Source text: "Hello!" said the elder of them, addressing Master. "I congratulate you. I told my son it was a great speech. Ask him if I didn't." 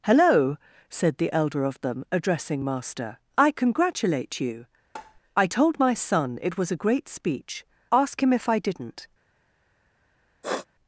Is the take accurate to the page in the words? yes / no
yes